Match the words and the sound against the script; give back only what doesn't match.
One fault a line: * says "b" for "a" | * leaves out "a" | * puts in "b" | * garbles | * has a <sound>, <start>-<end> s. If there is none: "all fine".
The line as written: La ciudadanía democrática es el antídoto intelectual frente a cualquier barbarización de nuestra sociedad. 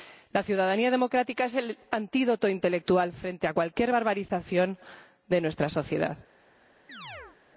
* has a chirp, 6.9-7.4 s